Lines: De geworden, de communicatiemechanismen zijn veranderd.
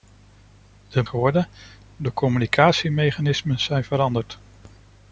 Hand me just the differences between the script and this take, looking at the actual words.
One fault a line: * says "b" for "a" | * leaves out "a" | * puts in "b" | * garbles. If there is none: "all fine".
all fine